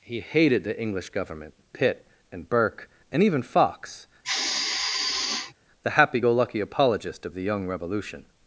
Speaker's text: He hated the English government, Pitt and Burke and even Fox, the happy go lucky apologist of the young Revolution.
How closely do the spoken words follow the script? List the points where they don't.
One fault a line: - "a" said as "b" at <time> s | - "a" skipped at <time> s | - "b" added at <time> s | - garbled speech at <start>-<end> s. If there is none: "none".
none